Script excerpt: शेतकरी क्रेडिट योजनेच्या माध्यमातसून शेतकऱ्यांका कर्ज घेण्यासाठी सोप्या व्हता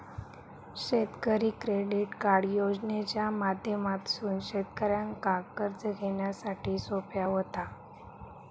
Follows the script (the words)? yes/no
no